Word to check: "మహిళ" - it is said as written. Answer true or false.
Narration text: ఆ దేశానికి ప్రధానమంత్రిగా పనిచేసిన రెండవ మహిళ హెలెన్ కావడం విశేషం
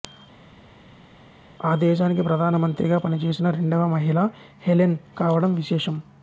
true